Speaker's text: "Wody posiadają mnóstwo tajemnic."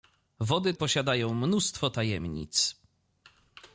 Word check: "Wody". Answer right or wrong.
right